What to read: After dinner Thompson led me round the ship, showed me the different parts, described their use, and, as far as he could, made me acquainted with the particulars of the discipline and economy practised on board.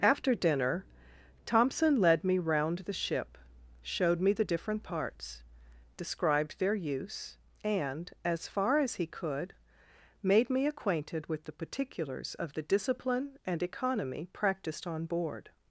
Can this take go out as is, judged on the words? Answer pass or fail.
pass